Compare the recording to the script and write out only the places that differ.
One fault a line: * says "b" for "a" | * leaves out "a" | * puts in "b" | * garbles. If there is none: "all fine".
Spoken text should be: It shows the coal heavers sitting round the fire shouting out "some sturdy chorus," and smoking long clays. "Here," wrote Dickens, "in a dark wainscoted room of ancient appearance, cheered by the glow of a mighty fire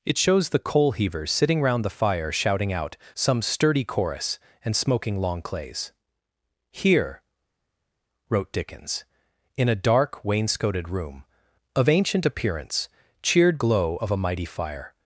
* leaves out "by the"